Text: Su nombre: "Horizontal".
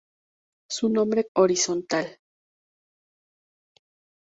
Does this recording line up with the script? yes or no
yes